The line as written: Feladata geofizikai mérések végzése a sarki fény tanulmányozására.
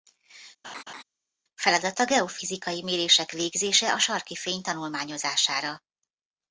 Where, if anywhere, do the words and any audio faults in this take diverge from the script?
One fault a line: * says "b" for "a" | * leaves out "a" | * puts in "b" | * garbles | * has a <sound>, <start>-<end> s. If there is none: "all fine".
* has a laugh, 0.6-1.0 s